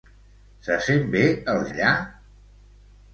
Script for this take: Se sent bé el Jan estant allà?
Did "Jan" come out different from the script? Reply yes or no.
yes